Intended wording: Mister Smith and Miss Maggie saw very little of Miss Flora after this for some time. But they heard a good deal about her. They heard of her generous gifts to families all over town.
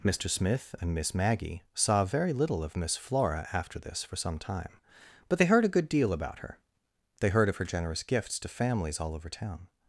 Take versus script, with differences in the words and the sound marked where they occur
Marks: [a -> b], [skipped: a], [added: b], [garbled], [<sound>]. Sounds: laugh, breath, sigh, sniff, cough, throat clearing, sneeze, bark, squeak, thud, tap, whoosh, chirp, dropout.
Mister Smith and Miss Maggie saw very little of Miss Flora after this for some time. But they heard a good deal about her. They heard of her generous gifts to families all over town.